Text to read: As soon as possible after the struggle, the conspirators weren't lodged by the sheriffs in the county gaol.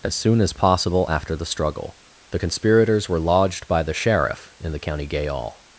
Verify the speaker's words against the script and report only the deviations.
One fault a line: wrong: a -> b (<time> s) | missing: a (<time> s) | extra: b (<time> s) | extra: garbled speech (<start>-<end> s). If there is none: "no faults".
wrong: weren't -> were (3.1 s)
wrong: sheriffs -> sheriff (3.9 s)